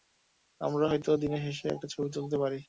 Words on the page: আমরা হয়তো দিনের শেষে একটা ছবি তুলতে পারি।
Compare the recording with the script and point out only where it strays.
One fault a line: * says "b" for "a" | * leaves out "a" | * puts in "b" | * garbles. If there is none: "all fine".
all fine